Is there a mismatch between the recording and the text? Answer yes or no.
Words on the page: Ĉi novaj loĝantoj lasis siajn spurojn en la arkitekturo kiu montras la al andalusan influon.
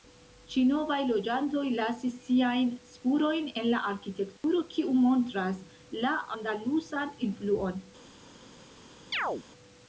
yes